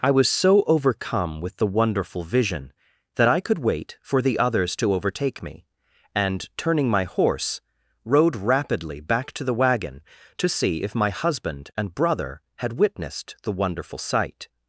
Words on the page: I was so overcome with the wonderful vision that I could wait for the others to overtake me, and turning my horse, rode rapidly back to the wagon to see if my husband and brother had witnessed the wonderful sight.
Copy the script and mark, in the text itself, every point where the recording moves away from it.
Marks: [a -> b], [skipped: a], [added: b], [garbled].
I was so overcome with the wonderful vision that I could wait for the others to overtake me, and turning my horse, rode rapidly back to the wagon to see if my husband and brother had witnessed the wonderful sight.